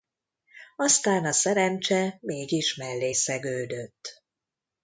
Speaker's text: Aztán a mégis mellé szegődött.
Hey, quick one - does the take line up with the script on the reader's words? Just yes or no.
no